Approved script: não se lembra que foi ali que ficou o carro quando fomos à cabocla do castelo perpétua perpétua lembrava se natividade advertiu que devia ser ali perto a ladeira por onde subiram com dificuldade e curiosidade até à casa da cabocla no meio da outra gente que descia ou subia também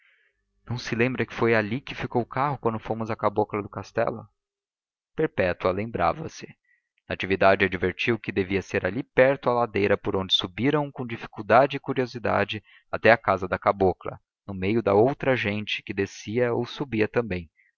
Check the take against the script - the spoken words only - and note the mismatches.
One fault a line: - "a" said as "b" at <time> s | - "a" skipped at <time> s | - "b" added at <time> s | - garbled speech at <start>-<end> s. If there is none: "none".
- "perpétua" skipped at 5.7 s